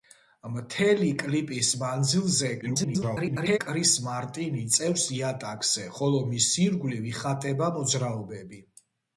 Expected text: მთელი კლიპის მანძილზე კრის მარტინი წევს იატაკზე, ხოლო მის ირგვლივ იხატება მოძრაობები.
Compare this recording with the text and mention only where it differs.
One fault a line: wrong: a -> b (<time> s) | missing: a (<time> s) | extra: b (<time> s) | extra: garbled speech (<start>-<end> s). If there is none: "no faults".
extra: garbled speech (2.6-3.6 s)